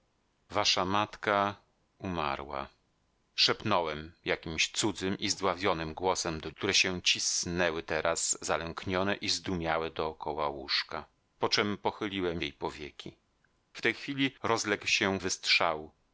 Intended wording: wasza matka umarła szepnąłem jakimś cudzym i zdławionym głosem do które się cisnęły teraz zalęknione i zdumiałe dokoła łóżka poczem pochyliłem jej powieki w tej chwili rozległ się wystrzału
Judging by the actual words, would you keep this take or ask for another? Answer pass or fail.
pass